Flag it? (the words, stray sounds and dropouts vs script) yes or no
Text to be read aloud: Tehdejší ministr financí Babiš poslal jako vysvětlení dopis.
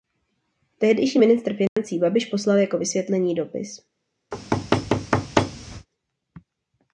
yes